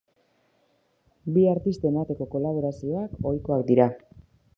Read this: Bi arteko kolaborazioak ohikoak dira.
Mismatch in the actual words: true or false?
true